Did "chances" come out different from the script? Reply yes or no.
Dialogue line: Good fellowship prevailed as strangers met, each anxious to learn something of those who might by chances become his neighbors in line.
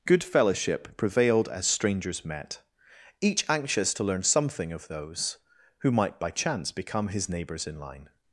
yes